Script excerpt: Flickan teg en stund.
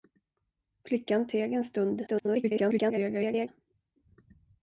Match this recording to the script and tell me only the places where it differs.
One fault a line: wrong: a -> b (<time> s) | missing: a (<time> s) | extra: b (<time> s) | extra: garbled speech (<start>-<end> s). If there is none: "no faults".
extra: garbled speech (2.1-3.5 s)